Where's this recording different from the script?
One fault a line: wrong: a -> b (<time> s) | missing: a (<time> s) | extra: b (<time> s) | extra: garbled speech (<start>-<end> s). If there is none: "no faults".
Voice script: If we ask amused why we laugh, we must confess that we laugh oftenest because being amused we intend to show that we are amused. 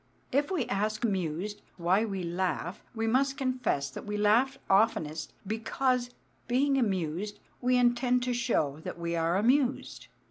no faults